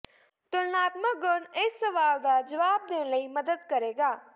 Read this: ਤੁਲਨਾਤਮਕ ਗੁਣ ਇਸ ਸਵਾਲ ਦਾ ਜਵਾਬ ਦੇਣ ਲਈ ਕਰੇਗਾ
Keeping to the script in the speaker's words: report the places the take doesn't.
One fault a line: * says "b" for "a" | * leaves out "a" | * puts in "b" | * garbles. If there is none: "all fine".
* puts in "ਮਦਦ"